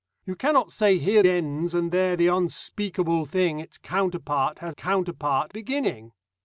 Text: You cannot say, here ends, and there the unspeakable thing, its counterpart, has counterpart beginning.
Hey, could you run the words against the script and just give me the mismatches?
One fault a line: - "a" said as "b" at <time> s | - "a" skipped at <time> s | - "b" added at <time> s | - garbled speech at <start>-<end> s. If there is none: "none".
none